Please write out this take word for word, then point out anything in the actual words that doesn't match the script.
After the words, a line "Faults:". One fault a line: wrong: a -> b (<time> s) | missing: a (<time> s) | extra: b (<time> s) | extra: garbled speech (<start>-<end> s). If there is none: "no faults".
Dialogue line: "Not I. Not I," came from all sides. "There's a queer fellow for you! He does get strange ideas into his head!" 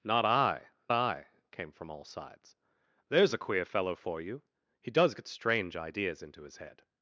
"Not I. I," came from all sides. "There's a queer fellow for you! He does get strange ideas into his head!"
Faults:
missing: Not (0.7 s)